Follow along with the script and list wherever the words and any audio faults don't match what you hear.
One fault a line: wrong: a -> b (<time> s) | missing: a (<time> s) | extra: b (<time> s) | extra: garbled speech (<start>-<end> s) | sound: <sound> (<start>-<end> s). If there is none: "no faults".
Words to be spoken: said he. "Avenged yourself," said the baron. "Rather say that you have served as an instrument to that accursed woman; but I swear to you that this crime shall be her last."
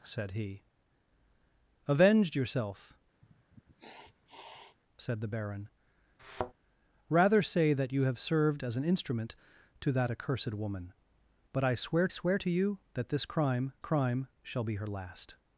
sound: sniff (3.2-4.8 s)
sound: thud (6.2-6.5 s)
extra: swear (12.1 s)
extra: crime (13.8 s)